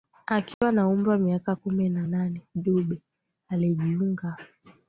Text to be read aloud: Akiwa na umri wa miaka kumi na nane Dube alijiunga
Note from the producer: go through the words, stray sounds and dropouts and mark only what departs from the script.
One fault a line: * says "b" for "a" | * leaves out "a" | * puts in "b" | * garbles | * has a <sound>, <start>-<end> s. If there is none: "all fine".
* has a dropout, 0.5-0.6 s